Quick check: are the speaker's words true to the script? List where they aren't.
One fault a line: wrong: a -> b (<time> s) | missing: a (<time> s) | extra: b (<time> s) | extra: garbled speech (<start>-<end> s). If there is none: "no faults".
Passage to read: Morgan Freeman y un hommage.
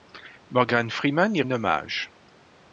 no faults